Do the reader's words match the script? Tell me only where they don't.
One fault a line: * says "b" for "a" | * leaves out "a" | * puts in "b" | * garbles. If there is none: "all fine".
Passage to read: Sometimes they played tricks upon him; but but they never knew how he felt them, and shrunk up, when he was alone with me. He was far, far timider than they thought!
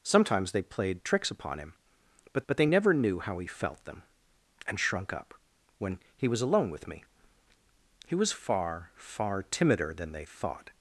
all fine